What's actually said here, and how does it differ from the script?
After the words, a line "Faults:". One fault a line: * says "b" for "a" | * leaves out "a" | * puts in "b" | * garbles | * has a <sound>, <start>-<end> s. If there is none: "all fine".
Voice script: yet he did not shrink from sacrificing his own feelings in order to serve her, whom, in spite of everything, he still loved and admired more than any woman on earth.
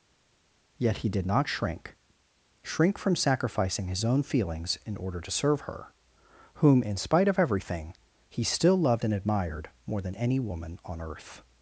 yet he did not shrink shrink from sacrificing his own feelings in order to serve her, whom, in spite of everything, he still loved and admired more than any woman on earth.
Faults:
* puts in "shrink"